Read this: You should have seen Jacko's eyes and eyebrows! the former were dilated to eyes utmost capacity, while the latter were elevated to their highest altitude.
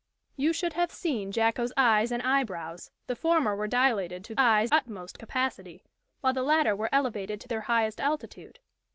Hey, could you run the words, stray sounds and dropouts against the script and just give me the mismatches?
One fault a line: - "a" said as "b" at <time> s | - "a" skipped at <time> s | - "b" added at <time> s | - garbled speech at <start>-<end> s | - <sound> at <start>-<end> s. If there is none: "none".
none